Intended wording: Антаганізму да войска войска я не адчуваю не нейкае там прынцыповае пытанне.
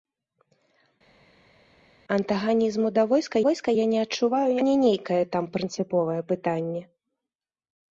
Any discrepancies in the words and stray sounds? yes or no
no